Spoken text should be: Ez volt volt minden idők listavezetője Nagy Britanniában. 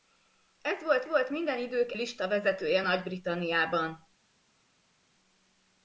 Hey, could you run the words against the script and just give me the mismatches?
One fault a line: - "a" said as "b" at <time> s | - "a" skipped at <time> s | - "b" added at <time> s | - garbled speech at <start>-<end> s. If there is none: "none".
none